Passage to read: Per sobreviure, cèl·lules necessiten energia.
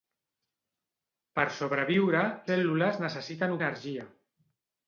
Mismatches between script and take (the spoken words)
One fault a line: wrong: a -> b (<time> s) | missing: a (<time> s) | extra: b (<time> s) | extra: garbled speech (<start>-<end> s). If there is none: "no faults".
no faults